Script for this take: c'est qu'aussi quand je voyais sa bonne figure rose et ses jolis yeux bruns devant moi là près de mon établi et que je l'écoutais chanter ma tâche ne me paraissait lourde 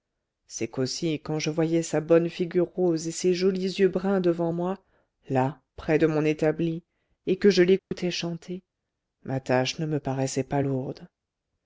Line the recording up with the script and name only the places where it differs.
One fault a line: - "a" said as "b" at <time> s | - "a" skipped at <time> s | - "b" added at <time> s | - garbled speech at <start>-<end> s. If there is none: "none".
- "pas" added at 10.4 s